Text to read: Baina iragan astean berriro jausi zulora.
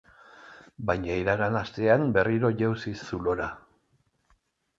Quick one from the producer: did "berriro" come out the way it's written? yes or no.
yes